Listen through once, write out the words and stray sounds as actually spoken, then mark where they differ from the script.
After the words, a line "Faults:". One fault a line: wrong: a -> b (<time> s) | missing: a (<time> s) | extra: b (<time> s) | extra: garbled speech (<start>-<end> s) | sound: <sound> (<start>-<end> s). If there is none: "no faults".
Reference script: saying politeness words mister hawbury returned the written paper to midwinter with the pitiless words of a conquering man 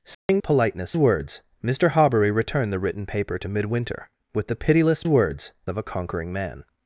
saying politeness words mister hawbury returned the written paper to midwinter with the pitiless words of a conquering man
Faults:
sound: dropout (0.1-0.3 s)